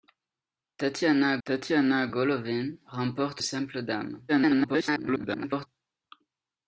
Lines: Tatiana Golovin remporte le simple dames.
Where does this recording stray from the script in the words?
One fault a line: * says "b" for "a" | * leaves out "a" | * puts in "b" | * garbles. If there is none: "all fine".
* puts in "tatiana"
* leaves out "le"
* garbles